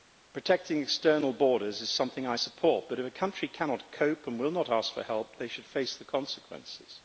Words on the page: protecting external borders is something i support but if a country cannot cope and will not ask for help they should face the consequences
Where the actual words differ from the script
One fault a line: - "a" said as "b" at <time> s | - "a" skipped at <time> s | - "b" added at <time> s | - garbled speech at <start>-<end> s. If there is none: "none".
none